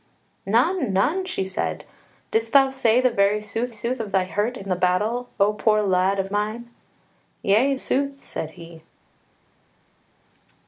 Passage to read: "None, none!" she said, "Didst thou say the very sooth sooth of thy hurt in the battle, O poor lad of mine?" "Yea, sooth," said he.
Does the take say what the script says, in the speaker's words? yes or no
yes